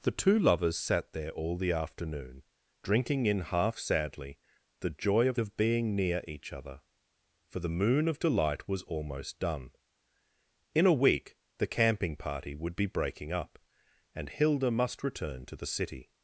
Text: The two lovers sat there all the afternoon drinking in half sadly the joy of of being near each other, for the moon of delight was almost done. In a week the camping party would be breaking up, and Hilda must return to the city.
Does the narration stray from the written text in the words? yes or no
no